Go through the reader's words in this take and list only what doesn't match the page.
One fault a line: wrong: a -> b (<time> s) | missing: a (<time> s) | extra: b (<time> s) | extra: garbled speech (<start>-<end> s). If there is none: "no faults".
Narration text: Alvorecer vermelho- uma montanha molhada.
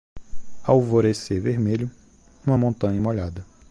no faults